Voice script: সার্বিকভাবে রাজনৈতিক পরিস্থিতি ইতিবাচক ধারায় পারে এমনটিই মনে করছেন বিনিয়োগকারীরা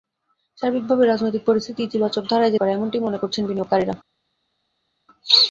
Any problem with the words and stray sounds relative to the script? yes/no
no